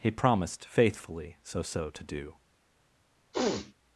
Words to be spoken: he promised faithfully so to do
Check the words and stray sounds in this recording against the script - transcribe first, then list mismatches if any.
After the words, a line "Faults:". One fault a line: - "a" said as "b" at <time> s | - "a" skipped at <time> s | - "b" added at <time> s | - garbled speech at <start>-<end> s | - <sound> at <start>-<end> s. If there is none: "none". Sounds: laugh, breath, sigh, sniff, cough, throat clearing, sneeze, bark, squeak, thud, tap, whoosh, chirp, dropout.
he promised faithfully so so to do
Faults:
- "so" added at 1.6 s
- sniff at 3.3-3.7 s